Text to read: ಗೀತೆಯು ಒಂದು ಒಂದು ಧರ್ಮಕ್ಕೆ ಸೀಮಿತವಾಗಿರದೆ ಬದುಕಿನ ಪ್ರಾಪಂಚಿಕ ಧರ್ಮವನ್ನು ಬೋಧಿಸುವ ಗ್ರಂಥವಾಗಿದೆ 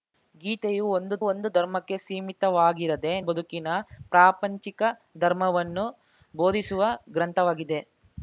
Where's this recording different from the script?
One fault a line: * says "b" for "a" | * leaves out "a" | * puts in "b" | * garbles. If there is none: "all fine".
all fine